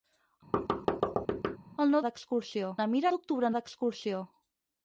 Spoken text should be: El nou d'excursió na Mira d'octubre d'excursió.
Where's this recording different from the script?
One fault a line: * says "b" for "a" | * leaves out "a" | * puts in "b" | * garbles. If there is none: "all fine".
all fine